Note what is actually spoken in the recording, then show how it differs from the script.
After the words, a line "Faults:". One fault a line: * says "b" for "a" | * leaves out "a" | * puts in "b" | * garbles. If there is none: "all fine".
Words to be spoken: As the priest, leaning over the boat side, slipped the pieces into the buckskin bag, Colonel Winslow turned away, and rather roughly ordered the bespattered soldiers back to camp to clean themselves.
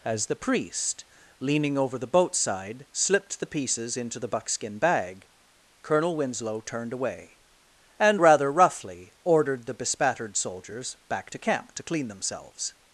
As the priest, leaning over the boat side, slipped the pieces into the buckskin bag, Colonel Winslow turned away, and rather roughly ordered the bespattered soldiers back to camp to clean themselves.
Faults:
all fine